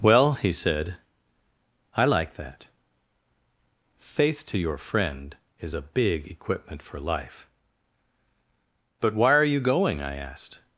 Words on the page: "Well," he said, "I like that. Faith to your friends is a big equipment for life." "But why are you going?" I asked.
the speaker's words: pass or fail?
fail